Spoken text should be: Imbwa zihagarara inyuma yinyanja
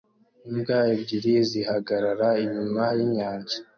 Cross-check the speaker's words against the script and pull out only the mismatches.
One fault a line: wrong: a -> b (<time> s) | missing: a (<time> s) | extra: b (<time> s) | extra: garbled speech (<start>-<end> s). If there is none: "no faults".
extra: ebyiri (0.9 s)